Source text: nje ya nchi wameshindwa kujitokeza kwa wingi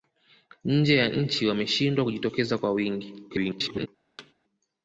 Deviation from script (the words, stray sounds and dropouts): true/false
true